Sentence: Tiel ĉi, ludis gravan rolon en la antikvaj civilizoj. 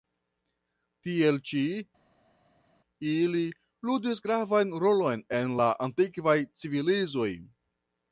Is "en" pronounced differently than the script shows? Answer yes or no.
no